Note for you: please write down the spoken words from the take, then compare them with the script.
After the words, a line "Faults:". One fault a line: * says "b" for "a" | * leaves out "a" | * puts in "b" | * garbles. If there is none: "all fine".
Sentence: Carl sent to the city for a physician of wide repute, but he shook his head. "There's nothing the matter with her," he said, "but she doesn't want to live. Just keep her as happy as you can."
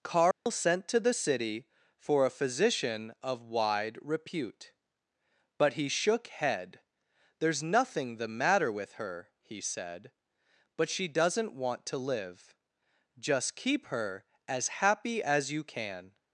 Carl sent to the city for a physician of wide repute, but he shook head. "There's nothing the matter with her," he said, "but she doesn't want to live. Just keep her as happy as you can."
Faults:
* leaves out "his"